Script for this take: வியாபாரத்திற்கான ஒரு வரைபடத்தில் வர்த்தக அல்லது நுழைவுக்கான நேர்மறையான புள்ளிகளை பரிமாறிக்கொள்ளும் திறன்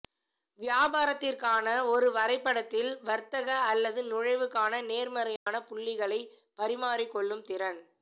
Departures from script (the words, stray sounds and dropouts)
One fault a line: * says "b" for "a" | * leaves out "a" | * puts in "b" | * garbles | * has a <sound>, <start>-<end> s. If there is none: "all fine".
* has a dropout, 5.4-5.5 s